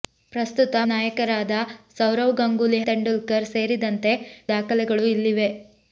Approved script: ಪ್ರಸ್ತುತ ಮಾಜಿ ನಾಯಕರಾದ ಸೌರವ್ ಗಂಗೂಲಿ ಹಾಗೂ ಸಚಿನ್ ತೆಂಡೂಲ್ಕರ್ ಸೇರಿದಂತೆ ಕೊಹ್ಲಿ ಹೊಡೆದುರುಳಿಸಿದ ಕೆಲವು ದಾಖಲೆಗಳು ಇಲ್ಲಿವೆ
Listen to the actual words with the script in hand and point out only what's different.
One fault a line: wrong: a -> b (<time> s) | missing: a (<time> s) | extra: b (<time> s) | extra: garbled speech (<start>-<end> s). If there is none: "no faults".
missing: ಮಾಜಿ (0.8 s)
missing: ಹಾಗೂ ಸಚಿನ್ (2.8 s)
missing: ಕೊಹ್ಲಿ ಹೊಡೆದುರುಳಿಸಿದ ಕೆಲವು (4.1 s)